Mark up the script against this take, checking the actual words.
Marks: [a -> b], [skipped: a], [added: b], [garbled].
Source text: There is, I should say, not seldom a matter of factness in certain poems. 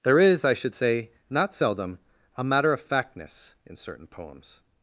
There is, I should say, not seldom a matter of factness in certain poems.